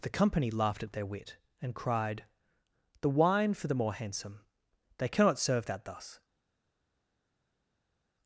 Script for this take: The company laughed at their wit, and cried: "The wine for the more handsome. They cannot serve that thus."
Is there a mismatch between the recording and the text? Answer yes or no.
no